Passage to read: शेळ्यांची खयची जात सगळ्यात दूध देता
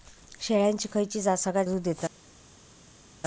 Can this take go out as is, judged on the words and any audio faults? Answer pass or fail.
pass